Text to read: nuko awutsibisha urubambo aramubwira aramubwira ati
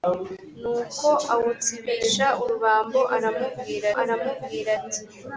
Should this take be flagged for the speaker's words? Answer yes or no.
no